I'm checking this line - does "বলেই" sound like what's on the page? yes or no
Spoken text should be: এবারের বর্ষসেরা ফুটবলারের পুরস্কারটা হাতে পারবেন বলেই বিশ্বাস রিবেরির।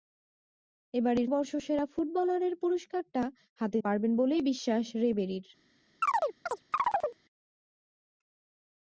yes